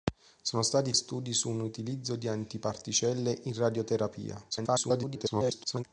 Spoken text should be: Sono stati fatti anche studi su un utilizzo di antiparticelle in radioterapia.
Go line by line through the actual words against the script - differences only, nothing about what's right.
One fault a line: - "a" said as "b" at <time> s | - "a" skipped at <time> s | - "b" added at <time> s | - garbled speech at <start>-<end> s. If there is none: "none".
- "fatti anche" skipped at 0.9 s
- garbled speech at 4.5-5.8 s